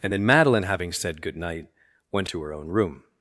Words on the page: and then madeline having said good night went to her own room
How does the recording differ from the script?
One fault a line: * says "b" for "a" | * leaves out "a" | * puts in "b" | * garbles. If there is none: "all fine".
all fine